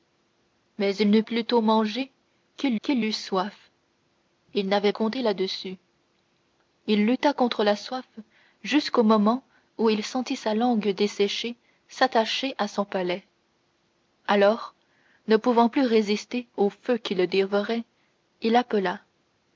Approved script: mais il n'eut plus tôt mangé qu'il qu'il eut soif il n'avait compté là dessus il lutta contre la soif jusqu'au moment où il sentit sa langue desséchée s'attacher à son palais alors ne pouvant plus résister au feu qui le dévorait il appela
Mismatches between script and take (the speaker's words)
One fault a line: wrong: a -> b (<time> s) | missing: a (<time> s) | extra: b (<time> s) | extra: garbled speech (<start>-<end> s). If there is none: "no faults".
no faults